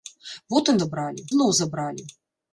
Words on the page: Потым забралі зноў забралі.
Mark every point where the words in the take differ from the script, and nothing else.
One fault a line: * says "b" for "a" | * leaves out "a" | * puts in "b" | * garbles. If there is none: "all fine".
all fine